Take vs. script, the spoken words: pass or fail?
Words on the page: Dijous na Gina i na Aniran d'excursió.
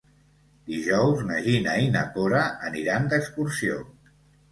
fail